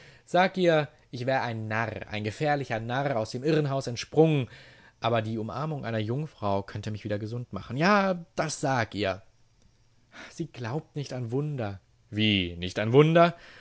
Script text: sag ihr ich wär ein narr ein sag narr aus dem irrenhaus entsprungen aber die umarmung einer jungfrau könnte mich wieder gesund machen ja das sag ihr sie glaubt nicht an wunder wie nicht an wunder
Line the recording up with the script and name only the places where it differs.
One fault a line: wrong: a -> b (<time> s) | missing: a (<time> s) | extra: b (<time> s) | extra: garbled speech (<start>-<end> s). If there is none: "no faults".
wrong: sag -> gefährlicher (2.2 s)